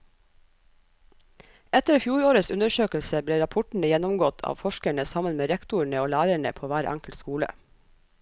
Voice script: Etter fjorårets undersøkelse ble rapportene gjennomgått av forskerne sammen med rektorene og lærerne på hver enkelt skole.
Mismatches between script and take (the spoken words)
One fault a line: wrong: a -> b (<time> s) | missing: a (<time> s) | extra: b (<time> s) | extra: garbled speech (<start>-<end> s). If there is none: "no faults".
no faults